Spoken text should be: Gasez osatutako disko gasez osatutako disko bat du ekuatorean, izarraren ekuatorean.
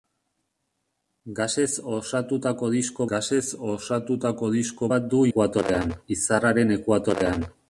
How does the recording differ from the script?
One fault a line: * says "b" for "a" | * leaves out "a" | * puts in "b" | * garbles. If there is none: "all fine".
all fine